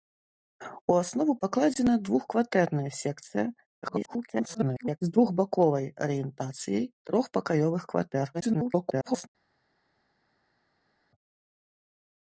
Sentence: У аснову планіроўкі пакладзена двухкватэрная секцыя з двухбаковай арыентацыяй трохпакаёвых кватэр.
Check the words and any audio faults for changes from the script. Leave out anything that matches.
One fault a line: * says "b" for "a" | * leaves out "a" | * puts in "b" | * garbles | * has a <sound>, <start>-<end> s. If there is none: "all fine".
* leaves out "планіроўкі"
* garbles
* garbles